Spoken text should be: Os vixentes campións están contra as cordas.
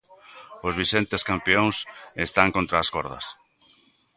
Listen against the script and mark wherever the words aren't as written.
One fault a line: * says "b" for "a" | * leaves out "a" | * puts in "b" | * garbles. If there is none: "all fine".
all fine